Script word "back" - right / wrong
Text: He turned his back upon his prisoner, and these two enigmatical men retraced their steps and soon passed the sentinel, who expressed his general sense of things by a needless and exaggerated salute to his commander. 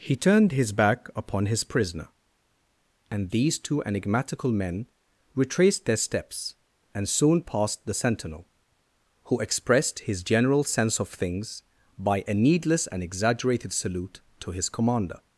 right